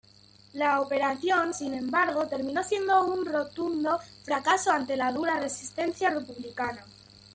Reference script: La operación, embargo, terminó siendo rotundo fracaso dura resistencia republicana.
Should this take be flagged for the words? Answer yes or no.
yes